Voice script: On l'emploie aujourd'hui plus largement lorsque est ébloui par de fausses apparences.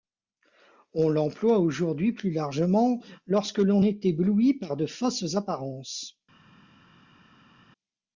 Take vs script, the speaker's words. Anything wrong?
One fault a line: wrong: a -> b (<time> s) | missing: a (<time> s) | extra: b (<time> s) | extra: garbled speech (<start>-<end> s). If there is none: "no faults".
extra: l'on (3.6 s)